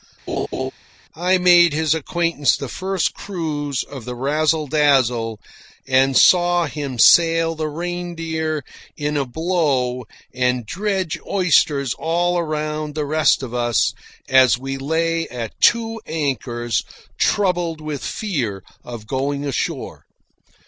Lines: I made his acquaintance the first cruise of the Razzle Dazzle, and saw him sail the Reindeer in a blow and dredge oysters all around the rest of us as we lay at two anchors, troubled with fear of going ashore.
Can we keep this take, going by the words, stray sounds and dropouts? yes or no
no